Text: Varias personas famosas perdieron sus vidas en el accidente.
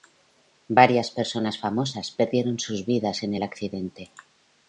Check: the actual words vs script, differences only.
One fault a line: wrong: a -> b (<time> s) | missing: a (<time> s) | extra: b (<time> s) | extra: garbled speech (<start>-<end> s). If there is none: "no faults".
no faults